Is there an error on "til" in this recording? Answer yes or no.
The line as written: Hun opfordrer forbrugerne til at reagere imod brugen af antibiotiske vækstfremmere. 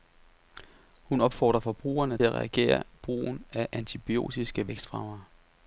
yes